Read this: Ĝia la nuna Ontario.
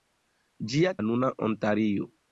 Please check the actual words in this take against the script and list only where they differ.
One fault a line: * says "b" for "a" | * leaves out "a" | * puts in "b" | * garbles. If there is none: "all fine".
all fine